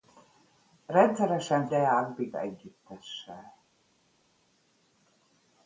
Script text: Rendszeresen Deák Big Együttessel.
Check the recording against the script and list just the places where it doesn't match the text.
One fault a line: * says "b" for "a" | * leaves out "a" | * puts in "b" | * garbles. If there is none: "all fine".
all fine